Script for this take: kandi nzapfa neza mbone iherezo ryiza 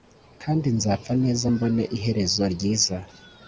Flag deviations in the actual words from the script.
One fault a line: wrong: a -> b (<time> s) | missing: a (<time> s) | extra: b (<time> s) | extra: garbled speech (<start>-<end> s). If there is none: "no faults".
no faults